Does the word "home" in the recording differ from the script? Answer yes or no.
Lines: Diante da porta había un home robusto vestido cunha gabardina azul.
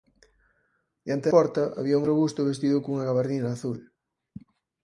yes